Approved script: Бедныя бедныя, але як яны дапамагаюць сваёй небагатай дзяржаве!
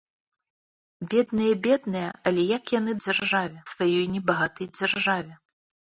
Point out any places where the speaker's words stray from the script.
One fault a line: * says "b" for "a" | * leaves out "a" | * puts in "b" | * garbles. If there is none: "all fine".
* says "дзяржаве" for "дапамагаюць"